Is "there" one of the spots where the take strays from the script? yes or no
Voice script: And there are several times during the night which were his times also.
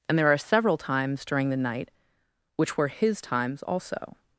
no